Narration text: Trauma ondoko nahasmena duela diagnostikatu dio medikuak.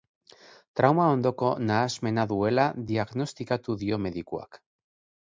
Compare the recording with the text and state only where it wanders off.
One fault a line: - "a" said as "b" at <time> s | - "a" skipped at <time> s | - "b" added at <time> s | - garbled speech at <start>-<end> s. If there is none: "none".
none